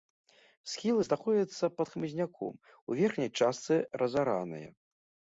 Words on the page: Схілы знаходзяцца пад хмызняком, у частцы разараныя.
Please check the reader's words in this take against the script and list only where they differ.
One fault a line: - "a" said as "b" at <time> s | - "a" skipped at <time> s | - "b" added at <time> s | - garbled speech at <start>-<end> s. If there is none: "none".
- "верхняй" added at 3.0 s